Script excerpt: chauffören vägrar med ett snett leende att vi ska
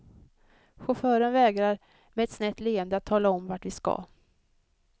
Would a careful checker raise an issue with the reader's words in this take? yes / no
yes